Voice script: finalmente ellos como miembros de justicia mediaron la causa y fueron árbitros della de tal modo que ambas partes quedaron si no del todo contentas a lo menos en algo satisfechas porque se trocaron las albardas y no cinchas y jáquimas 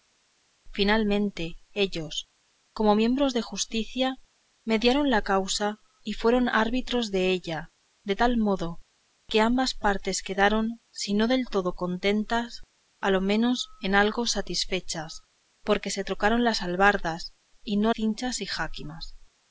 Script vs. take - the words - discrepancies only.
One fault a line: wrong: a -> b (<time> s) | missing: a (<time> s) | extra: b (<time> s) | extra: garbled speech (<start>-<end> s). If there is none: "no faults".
no faults